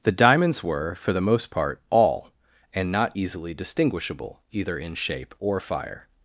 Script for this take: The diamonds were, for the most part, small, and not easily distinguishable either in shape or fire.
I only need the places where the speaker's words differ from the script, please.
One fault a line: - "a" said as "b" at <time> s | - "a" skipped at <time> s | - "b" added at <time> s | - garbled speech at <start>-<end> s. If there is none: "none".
- "small" said as "all" at 1.9 s